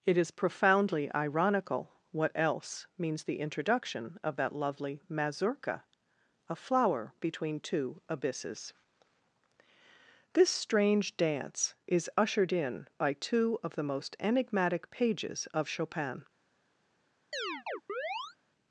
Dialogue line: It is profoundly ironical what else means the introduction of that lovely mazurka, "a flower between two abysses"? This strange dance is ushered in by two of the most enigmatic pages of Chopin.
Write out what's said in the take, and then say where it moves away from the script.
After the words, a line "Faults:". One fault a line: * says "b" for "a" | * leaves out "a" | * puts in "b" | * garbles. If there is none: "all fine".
It is profoundly ironical what else means the introduction of that lovely mazurka, "a flower between two abysses"? This strange dance is ushered in by two of the most enigmatic pages of Chopin.
Faults:
all fine